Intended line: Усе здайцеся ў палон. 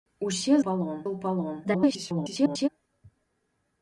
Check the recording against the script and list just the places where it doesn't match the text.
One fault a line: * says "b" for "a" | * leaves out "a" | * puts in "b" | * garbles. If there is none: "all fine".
* says "палон" for "здайцеся"
* garbles